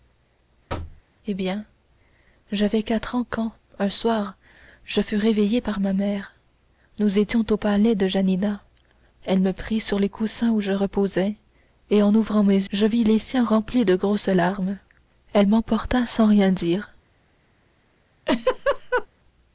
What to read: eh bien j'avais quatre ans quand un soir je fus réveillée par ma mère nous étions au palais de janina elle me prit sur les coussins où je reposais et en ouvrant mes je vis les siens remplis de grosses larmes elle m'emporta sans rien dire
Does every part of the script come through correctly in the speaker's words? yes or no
yes